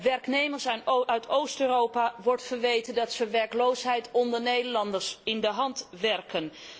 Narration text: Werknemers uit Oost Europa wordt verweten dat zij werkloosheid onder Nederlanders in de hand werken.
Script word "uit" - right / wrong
right